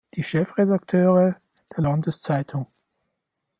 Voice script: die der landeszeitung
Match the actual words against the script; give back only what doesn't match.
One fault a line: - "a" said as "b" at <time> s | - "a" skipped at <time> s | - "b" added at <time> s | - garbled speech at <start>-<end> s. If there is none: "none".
- "chefredakteure" added at 0.2 s